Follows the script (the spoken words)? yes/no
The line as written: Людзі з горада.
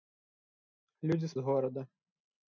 yes